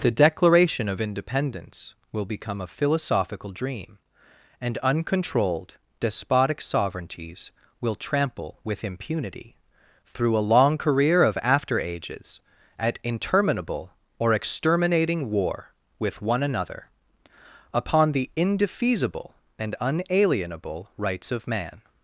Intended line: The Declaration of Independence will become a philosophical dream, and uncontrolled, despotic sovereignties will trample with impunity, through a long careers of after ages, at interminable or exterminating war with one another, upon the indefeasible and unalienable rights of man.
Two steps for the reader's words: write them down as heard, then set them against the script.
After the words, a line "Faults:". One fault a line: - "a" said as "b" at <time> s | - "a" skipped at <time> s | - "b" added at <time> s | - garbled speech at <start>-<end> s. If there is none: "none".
The Declaration of Independence will become a philosophical dream, and uncontrolled, despotic sovereignties will trample with impunity, through a long career of after ages, at interminable or exterminating war with one another, upon the indefeasible and unalienable rights of man.
Faults:
- "careers" said as "career" at 10.8 s